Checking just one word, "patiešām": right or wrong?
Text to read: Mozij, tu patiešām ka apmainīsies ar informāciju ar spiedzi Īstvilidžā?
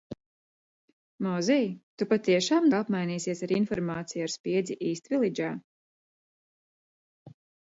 right